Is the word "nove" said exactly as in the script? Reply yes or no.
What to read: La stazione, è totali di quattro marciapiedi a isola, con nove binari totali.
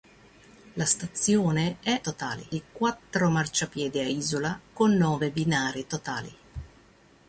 yes